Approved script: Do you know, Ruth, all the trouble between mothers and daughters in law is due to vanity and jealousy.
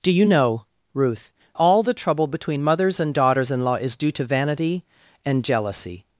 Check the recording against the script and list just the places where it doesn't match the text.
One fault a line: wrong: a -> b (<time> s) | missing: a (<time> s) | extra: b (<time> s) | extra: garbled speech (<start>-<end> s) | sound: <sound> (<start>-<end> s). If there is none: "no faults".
no faults